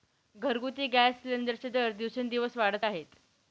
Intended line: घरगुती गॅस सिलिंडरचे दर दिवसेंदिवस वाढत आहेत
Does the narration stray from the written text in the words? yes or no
no